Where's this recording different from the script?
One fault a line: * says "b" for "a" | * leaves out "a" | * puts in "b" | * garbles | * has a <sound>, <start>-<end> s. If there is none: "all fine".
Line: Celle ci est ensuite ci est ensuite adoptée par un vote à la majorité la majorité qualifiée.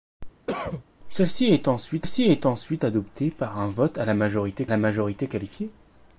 * has a cough, 0.5-0.8 s